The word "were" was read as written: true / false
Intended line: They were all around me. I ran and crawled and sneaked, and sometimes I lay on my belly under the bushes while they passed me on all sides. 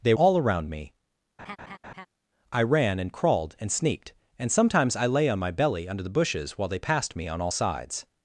false